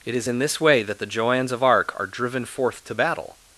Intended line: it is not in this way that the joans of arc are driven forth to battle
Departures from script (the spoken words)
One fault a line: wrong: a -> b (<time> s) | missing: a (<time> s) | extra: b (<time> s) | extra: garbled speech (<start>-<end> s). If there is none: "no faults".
missing: not (0.3 s)